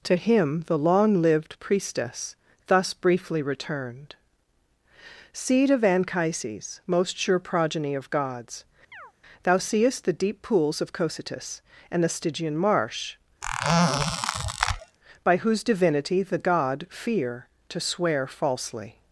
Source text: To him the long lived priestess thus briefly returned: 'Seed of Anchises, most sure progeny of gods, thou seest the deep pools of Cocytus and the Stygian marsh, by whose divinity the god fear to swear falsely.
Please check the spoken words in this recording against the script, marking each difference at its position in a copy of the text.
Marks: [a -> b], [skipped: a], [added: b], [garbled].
To him the long lived priestess thus briefly returned: 'Seed of Anchises, most sure progeny of gods, thou seest the deep pools of Cocytus and the Stygian marsh, by whose divinity the god fear to swear falsely.